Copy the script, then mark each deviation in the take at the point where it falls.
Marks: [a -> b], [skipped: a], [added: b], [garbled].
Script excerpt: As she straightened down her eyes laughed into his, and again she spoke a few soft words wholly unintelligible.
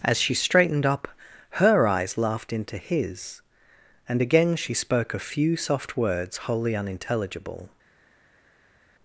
As she straightened [down -> up] her eyes laughed into his, and again she spoke a few soft words wholly unintelligible.